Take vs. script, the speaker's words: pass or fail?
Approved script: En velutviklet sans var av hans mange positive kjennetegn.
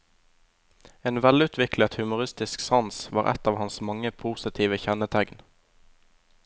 fail